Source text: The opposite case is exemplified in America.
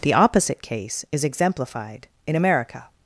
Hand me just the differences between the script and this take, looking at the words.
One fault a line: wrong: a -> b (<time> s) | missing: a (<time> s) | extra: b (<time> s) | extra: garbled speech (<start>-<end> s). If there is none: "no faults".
no faults